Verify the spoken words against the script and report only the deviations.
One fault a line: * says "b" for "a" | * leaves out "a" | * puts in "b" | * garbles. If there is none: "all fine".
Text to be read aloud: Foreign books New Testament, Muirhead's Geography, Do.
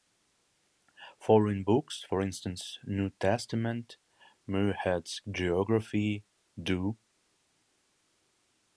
* puts in "for instance"